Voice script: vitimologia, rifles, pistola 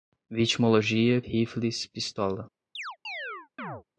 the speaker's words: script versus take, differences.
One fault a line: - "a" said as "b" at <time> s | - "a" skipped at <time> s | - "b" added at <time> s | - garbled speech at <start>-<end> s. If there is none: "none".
none